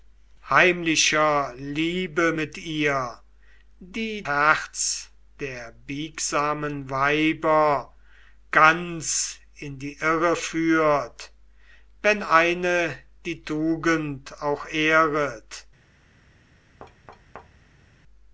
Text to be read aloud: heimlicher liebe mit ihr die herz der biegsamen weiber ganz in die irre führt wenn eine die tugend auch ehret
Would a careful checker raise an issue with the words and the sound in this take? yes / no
yes